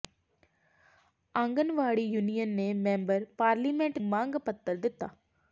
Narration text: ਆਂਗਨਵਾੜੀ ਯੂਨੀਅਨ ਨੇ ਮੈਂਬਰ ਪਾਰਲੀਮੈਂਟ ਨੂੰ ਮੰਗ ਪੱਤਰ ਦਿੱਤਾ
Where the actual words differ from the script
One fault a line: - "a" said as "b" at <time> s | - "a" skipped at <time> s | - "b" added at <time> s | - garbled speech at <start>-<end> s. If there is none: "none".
- "ਨੂੰ" skipped at 4.0 s